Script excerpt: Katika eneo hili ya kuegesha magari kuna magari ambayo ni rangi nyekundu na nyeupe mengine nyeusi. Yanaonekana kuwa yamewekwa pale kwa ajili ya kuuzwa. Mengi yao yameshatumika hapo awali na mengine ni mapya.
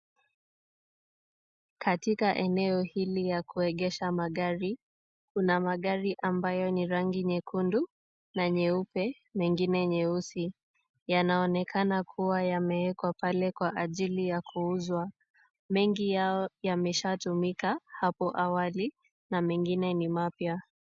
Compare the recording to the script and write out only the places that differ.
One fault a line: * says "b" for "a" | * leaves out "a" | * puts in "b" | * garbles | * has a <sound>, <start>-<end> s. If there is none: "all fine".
all fine